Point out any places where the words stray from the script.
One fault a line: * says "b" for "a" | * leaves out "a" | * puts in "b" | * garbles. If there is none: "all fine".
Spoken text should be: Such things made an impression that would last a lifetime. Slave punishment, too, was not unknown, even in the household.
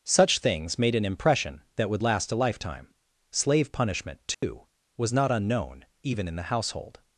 all fine